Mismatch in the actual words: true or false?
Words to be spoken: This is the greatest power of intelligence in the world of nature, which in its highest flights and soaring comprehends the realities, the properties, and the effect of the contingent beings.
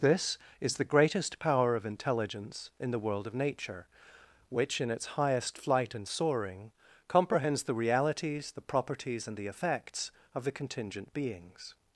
true